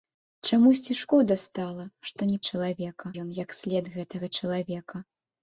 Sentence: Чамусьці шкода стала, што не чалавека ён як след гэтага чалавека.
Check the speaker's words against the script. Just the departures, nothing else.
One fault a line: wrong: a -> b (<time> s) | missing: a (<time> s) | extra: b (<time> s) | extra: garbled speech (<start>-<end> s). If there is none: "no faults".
no faults